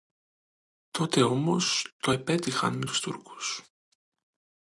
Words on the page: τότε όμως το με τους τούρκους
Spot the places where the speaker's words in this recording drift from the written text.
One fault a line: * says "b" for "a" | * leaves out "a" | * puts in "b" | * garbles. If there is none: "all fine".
* puts in "επέτυχαν"